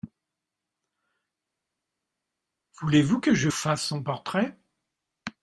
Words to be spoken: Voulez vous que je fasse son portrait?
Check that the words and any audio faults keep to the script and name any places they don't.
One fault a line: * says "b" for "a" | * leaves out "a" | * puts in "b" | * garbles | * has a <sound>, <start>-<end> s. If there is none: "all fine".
all fine